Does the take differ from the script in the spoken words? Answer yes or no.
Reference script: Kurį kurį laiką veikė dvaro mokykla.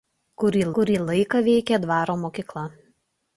no